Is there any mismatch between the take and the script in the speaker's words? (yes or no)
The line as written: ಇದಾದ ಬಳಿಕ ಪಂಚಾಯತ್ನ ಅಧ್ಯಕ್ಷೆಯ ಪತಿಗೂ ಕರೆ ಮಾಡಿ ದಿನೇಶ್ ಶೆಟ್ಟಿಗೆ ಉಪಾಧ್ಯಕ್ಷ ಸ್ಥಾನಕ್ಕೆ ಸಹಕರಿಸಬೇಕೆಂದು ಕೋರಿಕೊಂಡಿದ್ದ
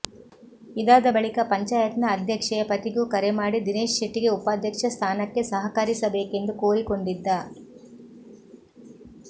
no